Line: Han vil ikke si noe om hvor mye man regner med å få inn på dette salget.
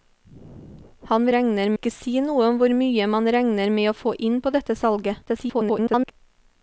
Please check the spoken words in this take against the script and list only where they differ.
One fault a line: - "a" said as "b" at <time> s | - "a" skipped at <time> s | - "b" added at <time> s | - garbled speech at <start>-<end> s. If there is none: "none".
- "vil" said as "regner" at 1.4 s
- garbled speech at 5.3-6.1 s